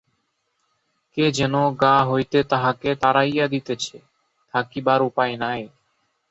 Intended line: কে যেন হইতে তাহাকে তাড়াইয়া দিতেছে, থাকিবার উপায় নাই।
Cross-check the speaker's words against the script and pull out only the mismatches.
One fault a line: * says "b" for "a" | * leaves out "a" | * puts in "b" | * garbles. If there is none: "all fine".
* puts in "গা"